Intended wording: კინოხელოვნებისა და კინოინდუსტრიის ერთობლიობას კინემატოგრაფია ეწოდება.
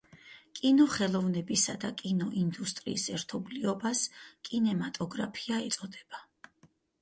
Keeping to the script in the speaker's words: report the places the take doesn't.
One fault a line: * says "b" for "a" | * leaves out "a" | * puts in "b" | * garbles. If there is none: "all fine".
all fine